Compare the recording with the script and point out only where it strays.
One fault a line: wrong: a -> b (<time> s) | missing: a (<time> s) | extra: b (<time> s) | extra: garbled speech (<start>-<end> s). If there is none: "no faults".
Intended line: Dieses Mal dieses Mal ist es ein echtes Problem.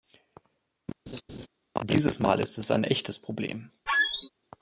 missing: dieses Mal (2.4 s)